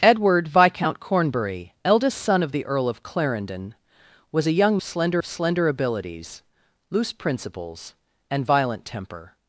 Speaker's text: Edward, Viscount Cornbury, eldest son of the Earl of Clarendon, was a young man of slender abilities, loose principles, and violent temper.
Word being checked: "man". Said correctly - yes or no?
no